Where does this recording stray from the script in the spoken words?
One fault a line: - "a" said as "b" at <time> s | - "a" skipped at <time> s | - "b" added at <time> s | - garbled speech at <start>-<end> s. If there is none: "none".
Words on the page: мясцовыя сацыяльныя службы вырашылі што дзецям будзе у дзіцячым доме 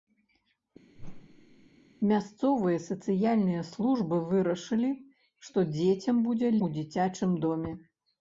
none